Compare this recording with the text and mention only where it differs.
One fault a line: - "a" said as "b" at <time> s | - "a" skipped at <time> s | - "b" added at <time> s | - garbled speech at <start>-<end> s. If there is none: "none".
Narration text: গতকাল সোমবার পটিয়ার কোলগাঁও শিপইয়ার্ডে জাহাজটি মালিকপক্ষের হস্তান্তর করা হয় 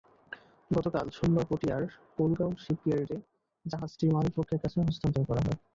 - "কাছে" added at 4.6 s